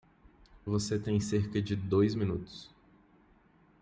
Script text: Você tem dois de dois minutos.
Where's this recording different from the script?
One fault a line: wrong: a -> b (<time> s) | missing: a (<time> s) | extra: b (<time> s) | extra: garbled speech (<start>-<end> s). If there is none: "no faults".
wrong: dois -> cerca (1.2 s)